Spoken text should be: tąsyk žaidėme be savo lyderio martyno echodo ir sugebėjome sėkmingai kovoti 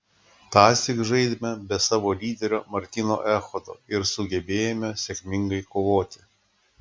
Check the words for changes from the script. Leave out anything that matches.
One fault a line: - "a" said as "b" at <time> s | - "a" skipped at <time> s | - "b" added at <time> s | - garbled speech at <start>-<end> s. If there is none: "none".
none